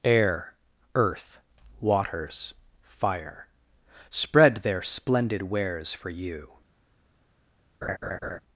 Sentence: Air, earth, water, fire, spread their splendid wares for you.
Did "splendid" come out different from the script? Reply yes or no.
no